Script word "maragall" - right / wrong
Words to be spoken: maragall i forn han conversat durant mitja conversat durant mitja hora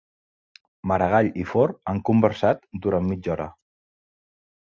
right